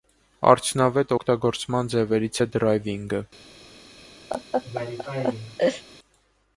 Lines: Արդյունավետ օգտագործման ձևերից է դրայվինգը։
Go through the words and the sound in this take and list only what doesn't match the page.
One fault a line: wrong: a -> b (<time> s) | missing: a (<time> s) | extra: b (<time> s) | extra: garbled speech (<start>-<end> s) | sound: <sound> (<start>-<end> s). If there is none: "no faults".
sound: laugh (4.3-5.8 s)